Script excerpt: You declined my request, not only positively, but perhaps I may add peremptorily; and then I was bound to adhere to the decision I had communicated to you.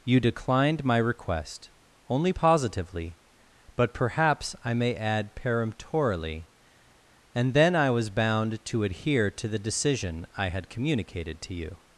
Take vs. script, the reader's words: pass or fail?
fail